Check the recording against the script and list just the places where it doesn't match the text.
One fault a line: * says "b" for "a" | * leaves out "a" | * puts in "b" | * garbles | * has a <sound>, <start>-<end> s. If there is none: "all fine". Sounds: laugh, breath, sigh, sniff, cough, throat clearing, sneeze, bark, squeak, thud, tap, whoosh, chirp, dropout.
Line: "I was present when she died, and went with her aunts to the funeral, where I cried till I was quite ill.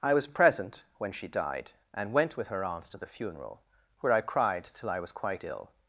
all fine